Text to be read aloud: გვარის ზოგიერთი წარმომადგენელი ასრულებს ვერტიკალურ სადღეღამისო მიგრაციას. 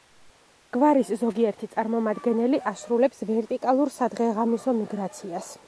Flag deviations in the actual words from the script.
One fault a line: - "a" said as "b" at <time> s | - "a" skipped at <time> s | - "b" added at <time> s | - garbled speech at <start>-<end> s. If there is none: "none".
none